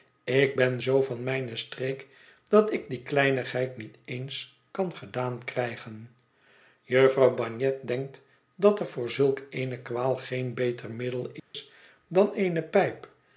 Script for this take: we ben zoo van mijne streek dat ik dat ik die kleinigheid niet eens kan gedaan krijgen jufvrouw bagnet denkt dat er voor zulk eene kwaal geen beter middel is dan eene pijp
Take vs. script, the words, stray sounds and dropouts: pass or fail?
fail